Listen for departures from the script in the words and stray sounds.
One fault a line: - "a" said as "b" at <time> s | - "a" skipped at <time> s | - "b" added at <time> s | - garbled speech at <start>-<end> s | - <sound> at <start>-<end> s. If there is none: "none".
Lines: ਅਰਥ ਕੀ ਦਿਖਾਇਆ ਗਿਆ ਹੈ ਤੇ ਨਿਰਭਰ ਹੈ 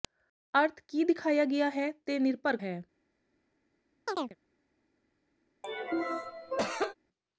- chirp at 4.1-4.4 s
- cough at 5.6-6.9 s